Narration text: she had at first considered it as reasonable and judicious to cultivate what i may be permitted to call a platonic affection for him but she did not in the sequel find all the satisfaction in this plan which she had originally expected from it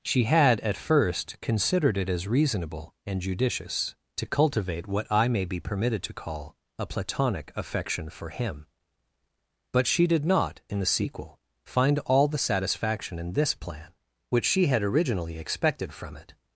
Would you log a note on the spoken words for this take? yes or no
no